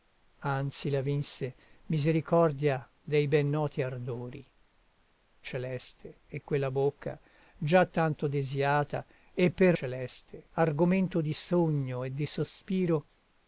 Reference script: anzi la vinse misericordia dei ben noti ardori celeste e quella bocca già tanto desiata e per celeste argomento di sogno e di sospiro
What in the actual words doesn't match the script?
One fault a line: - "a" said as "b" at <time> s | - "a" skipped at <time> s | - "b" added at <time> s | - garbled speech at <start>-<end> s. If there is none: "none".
none